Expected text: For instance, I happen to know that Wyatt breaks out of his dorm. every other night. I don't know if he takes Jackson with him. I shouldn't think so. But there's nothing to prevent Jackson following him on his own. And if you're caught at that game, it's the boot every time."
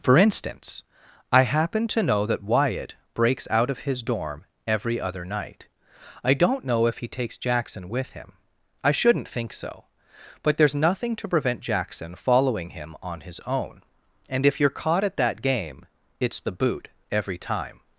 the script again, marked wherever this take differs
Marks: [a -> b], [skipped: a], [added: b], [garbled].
For instance, I happen to know that Wyatt breaks out of his dorm. every other night. I don't know if he takes Jackson with him. I shouldn't think so. But there's nothing to prevent Jackson following him on his own. And if you're caught at that game, it's the boot every time."